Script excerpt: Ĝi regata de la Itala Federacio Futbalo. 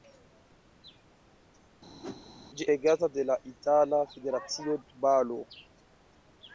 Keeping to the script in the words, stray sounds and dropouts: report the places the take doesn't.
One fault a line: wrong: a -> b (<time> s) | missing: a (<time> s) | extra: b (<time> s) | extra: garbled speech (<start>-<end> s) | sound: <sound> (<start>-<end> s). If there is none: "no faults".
sound: whoosh (2.0-2.2 s)